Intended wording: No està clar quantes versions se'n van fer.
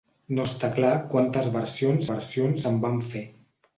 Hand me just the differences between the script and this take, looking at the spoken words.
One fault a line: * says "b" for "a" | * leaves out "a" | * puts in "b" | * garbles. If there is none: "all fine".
* puts in "versions"